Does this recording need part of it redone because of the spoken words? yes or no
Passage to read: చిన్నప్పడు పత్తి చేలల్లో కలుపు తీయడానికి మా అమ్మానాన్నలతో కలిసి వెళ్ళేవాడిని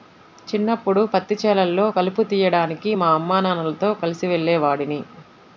no